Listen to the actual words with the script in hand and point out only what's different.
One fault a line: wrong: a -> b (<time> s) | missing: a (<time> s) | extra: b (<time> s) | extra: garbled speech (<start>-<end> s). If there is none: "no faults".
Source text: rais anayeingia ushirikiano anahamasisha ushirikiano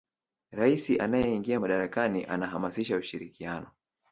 wrong: ushirikiano -> madarakani (1.6 s)